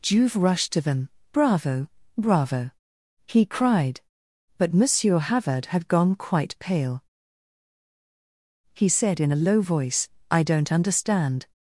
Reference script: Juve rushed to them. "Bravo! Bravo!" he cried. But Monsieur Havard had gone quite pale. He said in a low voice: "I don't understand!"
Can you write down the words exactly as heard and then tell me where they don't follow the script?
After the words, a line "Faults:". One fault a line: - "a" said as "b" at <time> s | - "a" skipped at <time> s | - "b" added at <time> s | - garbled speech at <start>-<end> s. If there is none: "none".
Juve rushed to them. "Bravo! Bravo!" he cried. But Monsieur Havard had gone quite pale. He said in a low voice: "I don't understand!"
Faults:
none